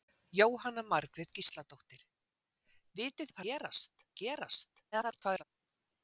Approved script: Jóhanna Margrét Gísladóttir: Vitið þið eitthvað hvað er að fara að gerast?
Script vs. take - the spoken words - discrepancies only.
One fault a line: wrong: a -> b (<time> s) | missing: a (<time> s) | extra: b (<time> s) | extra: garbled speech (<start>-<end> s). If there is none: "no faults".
missing: þið eitthvað hvað (3.3 s)
wrong: fara -> gerast (3.5 s)
extra: garbled speech (4.9-5.4 s)